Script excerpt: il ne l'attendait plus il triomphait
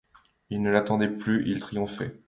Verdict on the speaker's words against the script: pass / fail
pass